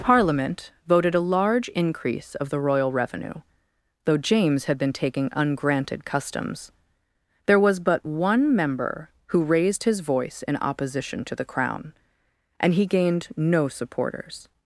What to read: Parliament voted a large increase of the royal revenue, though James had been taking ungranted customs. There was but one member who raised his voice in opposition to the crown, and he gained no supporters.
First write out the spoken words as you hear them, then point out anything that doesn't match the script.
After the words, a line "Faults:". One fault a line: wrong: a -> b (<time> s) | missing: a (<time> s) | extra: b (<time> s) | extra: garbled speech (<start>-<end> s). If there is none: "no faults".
Parliament voted a large increase of the royal revenue, though James had been taking ungranted customs. There was but one member who raised his voice in opposition to the crown, and he gained no supporters.
Faults:
no faults